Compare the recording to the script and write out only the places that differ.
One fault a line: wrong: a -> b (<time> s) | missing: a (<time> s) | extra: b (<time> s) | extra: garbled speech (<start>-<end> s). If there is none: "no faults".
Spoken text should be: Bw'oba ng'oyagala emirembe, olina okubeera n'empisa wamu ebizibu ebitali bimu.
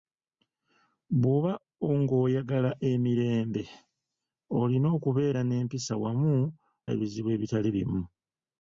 no faults